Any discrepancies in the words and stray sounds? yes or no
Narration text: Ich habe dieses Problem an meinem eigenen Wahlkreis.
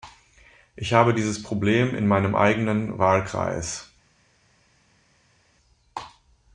yes